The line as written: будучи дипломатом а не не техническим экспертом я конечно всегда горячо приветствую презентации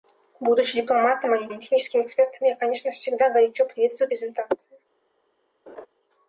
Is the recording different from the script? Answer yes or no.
no